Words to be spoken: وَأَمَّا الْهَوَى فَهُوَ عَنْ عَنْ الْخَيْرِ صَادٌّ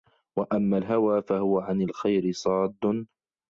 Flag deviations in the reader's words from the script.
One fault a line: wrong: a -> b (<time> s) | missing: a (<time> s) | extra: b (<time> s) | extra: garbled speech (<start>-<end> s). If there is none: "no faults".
missing: عَنْ (1.8 s)